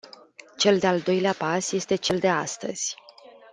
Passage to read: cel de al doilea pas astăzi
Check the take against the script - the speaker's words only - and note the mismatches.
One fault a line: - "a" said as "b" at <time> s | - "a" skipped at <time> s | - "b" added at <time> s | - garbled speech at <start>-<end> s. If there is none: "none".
- "este cel de" added at 1.7 s